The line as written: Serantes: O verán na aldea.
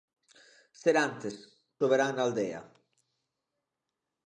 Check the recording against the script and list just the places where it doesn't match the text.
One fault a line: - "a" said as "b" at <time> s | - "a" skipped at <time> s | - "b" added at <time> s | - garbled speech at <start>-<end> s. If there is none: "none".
none